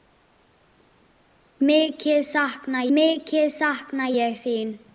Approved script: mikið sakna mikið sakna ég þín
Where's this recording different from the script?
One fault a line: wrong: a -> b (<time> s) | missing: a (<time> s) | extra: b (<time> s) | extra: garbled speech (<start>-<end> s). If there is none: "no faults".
no faults